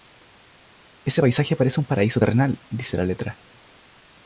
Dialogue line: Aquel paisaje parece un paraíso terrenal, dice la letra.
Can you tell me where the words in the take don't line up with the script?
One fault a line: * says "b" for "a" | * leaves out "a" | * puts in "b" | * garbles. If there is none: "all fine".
* says "Ese" for "Aquel"